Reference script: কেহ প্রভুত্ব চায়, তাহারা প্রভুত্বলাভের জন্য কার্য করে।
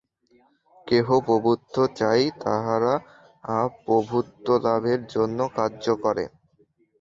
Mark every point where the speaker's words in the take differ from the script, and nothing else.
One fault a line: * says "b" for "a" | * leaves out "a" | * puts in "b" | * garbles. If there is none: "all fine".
all fine